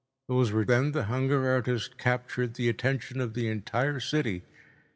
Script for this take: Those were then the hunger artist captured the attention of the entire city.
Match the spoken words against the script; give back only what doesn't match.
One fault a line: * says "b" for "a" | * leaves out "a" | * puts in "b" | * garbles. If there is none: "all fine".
all fine